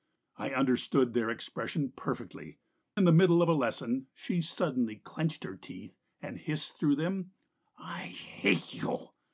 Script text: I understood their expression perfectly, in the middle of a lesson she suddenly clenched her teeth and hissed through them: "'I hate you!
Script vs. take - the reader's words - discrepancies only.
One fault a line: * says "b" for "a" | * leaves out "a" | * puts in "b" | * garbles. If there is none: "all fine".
all fine